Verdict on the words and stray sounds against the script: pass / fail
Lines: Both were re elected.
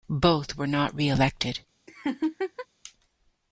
fail